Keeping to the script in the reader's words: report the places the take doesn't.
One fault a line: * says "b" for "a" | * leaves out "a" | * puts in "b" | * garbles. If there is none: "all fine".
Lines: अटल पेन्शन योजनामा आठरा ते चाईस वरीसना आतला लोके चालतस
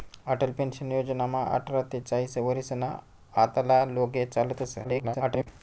* garbles